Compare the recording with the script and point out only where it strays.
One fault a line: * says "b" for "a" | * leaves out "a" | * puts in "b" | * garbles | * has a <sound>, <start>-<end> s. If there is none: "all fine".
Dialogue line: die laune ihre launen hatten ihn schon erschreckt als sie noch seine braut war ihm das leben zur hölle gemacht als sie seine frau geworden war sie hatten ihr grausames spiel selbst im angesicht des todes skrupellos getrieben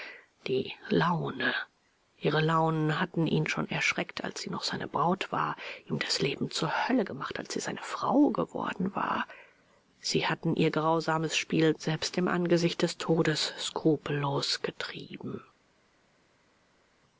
all fine